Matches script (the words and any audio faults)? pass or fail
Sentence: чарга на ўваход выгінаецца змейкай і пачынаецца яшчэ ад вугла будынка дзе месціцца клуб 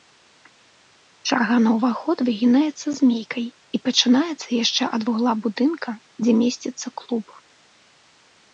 pass